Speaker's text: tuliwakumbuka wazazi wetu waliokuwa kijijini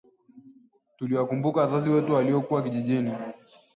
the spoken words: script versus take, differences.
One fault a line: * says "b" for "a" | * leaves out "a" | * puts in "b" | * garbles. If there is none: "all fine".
all fine